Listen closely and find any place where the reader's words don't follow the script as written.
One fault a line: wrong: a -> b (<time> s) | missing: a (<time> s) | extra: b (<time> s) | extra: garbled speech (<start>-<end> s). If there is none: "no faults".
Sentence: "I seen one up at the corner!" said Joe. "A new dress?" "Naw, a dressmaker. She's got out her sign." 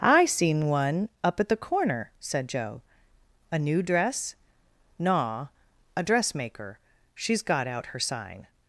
no faults